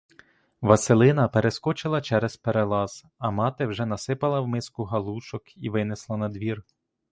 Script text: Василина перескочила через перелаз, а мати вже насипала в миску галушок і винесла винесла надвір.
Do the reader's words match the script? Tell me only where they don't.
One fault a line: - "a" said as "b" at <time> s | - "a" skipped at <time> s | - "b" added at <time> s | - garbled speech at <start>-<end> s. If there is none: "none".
- "винесла" skipped at 6.2 s